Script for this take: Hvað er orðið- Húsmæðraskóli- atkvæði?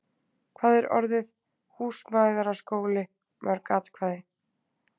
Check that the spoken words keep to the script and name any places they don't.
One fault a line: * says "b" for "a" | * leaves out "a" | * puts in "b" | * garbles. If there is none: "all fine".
* puts in "mörg"